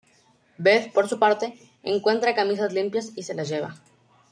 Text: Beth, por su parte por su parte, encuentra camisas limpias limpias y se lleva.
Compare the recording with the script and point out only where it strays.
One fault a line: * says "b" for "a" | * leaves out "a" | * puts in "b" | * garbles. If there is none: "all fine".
* leaves out "por su parte"
* leaves out "limpias"
* puts in "las"